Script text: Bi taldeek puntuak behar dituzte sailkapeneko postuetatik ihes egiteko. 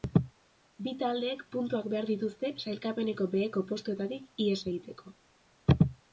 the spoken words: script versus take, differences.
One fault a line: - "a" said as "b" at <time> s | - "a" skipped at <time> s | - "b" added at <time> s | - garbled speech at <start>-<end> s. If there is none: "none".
- "beheko" added at 3.4 s